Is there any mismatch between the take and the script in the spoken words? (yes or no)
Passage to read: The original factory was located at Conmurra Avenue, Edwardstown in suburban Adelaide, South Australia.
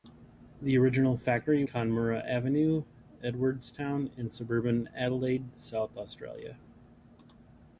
yes